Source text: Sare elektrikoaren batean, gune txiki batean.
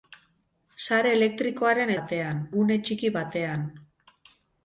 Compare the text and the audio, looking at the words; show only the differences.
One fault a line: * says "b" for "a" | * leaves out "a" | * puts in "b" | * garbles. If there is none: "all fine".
all fine